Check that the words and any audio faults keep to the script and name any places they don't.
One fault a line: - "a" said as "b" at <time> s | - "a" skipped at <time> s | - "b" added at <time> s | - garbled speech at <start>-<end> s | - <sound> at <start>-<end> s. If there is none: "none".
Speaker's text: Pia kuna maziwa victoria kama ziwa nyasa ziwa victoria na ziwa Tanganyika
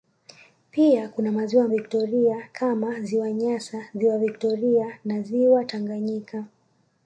none